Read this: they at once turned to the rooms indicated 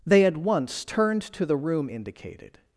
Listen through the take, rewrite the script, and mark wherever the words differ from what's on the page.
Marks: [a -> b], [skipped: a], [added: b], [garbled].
they at once turned to the [rooms -> room] indicated